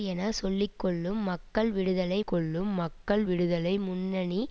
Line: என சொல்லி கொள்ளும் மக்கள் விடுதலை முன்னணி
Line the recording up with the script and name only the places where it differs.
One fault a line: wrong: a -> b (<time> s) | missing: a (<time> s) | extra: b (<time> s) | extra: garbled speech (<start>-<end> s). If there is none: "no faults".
extra: கொள்ளும் மக்கள் விடுதலை (2.2 s)